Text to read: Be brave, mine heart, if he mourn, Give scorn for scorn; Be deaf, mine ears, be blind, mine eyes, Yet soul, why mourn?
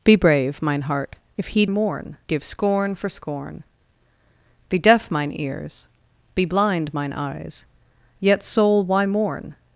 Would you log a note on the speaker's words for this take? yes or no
no